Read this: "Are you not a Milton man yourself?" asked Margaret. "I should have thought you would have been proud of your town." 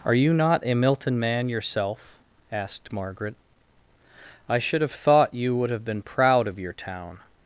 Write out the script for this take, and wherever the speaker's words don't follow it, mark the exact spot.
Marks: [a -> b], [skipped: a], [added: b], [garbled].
"Are you not a Milton man yourself?" asked Margaret. "I should have thought you would have been proud of your town."